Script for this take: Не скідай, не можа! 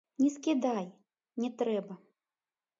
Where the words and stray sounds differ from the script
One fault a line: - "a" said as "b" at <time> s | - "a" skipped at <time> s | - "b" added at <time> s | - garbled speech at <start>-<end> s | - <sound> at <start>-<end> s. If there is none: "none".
- "можа" said as "трэба" at 1.6 s